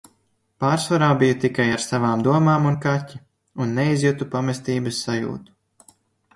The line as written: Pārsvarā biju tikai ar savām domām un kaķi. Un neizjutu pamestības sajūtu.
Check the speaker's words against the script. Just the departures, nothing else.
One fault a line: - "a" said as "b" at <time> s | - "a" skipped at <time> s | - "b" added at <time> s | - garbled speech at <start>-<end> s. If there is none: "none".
none